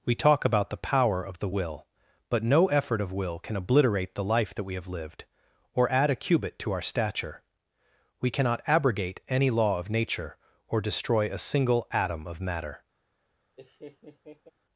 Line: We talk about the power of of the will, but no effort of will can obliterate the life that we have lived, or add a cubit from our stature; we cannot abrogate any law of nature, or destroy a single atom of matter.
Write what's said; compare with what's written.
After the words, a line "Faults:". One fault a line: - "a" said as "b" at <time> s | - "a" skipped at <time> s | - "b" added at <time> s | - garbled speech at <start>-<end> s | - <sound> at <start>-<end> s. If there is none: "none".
We talk about the power of the will, but no effort of will can obliterate the life that we have lived, or add a cubit to our stature; we cannot abrogate any law of nature, or destroy a single atom of matter.
Faults:
- "of" skipped at 1.4 s
- "from" said as "to" at 6.6 s
- laugh at 13.6-14.5 s